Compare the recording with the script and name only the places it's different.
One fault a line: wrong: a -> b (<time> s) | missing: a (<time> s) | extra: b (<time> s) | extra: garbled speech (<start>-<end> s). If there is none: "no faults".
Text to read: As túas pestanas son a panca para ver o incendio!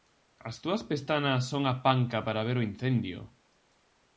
no faults